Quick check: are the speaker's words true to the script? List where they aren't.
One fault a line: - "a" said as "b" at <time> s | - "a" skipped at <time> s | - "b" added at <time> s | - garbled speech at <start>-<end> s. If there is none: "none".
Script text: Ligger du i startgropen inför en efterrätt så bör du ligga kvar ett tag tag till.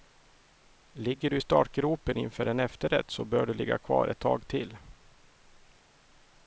- "tag" skipped at 4.5 s